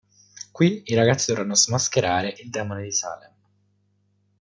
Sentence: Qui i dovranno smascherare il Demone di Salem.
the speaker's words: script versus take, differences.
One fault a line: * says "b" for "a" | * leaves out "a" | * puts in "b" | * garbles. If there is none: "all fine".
* puts in "ragazzi"